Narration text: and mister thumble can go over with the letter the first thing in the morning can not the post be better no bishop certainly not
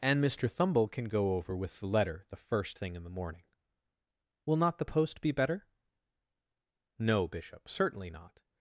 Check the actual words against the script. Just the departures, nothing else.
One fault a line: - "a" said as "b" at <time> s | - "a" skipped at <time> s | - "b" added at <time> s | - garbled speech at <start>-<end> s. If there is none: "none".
- "can" said as "will" at 4.5 s